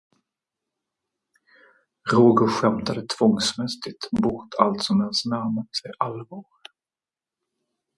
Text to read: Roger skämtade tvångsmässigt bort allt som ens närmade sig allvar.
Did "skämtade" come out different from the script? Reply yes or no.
no